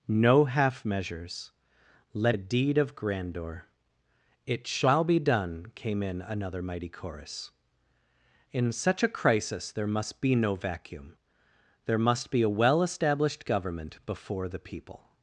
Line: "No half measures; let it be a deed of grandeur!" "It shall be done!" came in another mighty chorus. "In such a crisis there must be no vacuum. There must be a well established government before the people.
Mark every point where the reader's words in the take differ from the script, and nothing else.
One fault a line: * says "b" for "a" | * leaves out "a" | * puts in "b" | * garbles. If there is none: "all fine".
* leaves out "it be"